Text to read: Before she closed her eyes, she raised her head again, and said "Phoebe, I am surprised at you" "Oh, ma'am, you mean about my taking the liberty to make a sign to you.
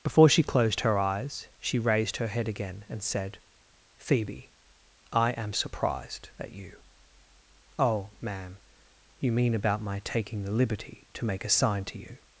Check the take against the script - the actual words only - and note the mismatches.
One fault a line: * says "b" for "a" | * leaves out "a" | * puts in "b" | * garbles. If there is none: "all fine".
all fine